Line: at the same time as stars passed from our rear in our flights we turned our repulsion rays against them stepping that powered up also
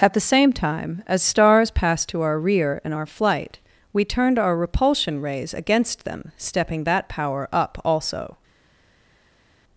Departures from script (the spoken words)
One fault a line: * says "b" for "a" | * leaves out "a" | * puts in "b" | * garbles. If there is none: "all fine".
* says "to" for "from"
* says "flight" for "flights"
* says "power" for "powered"